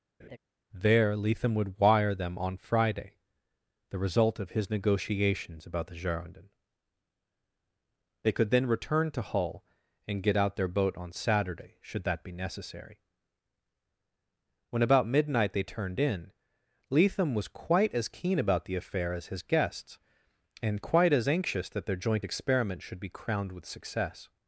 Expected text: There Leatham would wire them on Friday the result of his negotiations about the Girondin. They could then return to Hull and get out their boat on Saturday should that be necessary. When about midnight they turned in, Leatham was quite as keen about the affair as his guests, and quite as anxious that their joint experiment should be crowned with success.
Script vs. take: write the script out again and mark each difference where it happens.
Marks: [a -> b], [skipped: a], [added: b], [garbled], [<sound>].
[laugh] There Leatham would wire them on Friday the result of his negotiations about the Girondin. They could then return to Hull and get out their boat on Saturday should that be necessary. When about midnight they turned in, Leatham was quite as keen about the affair as his guests, and quite as anxious that their joint experiment should be crowned with success.